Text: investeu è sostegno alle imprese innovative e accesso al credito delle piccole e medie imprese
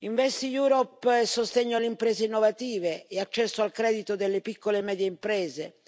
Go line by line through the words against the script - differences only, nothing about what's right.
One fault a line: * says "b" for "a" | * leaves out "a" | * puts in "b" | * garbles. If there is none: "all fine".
all fine